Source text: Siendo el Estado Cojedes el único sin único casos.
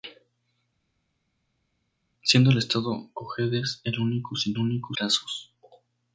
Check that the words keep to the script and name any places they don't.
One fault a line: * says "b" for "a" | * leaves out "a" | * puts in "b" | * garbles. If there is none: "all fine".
all fine